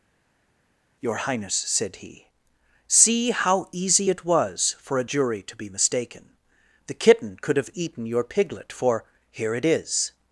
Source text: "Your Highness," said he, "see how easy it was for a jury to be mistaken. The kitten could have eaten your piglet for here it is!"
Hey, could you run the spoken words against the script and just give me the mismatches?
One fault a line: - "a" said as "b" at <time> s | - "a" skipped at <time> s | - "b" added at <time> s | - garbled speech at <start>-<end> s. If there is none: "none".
none